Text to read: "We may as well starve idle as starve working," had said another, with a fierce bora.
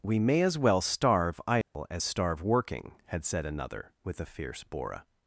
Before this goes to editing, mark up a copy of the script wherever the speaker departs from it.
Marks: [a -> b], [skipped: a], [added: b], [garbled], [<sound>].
"We may as well starve idle [dropout] as starve working," had said another, with a fierce bora.